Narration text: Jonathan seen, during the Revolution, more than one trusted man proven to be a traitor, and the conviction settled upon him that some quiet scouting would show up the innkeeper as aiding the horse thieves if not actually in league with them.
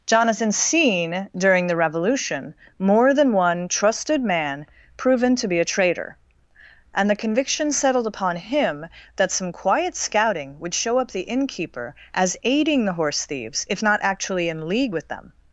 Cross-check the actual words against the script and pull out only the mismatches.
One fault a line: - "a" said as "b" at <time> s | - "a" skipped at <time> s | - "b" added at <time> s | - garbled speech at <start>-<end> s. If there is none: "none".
none